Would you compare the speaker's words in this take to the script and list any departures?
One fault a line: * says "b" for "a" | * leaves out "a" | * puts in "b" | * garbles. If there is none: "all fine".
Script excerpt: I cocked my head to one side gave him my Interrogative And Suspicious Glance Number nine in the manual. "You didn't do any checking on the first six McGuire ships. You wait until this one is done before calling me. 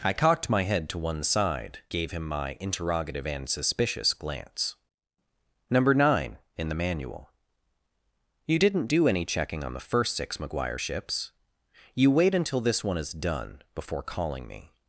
all fine